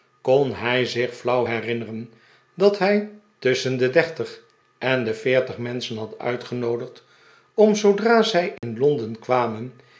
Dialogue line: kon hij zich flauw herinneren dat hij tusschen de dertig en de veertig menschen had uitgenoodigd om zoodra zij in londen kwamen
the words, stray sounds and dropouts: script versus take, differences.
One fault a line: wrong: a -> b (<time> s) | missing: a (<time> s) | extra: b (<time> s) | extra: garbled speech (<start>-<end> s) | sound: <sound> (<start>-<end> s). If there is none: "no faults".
sound: dropout (8.6-8.6 s)